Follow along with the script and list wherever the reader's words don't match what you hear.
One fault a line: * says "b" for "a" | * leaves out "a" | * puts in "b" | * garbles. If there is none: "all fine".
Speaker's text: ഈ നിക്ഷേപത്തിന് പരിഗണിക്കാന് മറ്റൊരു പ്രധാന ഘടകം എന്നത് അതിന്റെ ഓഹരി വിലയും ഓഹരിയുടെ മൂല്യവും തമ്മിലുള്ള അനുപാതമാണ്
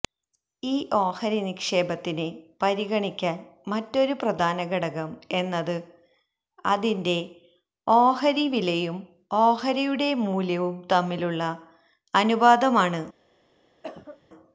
* puts in "ഓഹരി"